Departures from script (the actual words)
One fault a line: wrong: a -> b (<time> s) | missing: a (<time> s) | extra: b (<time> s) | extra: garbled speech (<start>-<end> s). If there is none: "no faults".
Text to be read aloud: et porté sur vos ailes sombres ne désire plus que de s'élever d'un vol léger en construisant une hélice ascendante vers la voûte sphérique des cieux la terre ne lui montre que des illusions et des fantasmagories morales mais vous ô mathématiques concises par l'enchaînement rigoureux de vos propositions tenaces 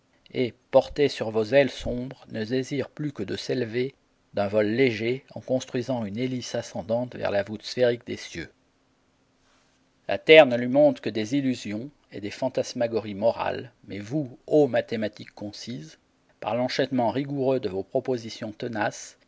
no faults